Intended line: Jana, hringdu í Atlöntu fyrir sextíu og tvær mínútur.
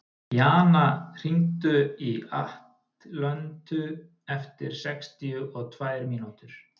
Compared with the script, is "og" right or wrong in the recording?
right